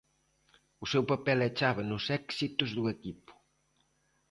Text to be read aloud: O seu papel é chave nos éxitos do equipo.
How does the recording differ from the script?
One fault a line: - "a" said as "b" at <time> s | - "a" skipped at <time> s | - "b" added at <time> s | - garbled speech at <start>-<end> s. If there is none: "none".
none